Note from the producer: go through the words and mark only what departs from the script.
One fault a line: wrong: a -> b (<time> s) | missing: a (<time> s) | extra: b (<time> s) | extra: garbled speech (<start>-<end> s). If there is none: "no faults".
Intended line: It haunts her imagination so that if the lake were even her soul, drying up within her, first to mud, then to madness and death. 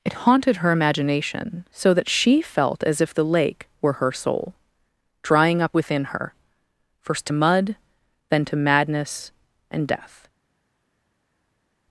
wrong: haunts -> haunted (0.1 s)
extra: she felt as (2.1 s)
missing: even (3.9 s)